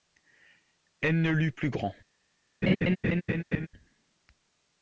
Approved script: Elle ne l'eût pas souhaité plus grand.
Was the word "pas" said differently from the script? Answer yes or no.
yes